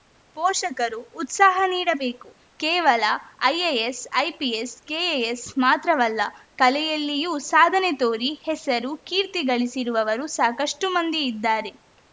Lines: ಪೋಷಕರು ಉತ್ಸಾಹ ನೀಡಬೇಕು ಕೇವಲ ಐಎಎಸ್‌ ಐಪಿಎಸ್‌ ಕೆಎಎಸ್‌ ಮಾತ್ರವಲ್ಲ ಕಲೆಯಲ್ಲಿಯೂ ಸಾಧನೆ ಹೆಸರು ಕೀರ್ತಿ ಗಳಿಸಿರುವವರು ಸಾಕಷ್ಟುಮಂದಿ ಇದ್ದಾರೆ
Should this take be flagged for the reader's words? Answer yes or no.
yes